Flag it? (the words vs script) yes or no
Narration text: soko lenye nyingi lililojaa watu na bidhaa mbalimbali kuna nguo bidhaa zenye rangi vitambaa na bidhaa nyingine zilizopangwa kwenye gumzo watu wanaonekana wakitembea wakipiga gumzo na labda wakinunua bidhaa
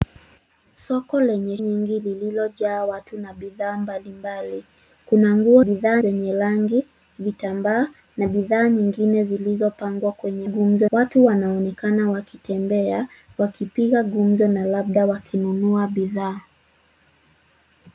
no